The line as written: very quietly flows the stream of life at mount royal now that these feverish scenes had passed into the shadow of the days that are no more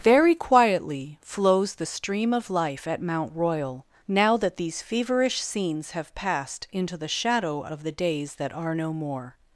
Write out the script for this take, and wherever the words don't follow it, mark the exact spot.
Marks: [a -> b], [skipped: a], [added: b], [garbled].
very quietly flows the stream of life at mount royal now that these feverish scenes [had -> have] passed into the shadow of the days that are no more